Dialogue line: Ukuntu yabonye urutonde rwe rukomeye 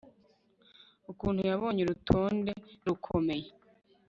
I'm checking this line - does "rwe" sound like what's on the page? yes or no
no